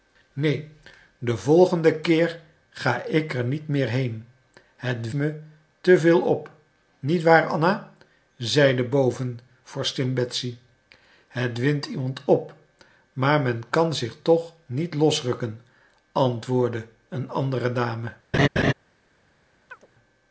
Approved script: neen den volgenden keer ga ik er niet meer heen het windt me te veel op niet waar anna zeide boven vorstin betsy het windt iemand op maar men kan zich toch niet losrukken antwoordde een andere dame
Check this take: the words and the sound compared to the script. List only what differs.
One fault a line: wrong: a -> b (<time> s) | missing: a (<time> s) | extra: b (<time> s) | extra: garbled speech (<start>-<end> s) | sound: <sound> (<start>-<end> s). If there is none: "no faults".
missing: windt (5.1 s)
sound: laugh (18.3-18.7 s)
sound: chirp (19.7-19.9 s)